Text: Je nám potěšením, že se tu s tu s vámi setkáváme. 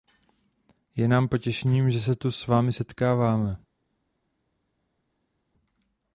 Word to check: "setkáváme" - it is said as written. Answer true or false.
true